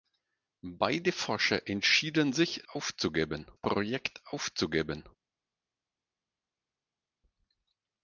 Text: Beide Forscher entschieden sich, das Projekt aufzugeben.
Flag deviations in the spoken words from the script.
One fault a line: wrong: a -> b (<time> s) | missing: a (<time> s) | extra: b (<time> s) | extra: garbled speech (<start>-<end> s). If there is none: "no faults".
wrong: das -> aufzugeben (2.7 s)